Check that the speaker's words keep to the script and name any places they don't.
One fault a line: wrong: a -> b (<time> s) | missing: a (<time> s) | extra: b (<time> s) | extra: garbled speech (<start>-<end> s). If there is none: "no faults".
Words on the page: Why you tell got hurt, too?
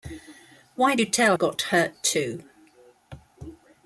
no faults